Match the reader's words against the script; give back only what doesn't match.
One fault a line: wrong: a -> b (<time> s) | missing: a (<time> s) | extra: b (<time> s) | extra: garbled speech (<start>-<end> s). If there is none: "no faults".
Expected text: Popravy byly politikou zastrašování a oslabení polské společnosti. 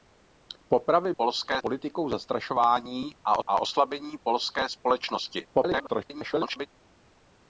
wrong: byly -> polské (1.2 s)
extra: a (3.5 s)
extra: garbled speech (5.5-6.7 s)